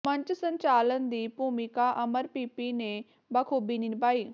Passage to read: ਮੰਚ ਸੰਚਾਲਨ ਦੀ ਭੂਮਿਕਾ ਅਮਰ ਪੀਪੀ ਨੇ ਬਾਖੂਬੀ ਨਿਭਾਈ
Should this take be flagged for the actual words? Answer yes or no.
no